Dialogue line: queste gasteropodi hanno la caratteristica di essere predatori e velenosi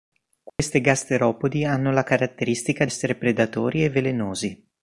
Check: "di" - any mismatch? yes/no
yes